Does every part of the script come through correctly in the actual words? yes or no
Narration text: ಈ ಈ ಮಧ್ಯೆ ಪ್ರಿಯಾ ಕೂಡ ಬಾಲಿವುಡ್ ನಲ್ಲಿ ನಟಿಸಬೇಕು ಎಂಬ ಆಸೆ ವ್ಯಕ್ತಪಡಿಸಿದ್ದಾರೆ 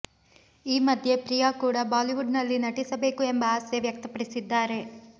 no